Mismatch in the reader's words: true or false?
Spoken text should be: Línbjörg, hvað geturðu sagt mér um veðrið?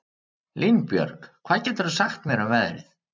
false